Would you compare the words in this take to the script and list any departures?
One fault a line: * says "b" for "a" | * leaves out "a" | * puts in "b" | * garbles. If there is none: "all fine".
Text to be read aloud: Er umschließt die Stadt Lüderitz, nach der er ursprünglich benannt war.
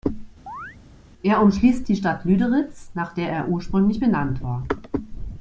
all fine